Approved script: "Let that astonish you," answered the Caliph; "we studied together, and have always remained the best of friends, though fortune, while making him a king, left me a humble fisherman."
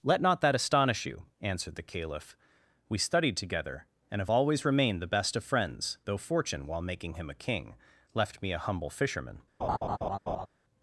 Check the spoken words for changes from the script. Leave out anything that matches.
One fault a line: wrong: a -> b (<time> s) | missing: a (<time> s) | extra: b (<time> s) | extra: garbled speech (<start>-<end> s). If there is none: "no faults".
extra: not (0.2 s)